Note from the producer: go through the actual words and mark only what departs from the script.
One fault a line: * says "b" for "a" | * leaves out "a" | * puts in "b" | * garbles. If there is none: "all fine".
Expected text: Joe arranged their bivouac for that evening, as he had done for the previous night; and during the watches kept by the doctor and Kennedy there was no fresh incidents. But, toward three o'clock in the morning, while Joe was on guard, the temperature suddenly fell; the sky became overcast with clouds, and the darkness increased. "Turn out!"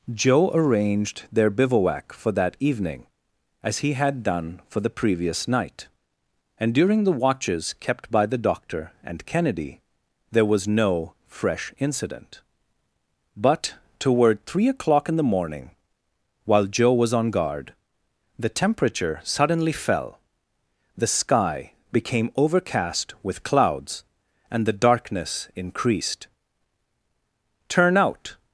* says "incident" for "incidents"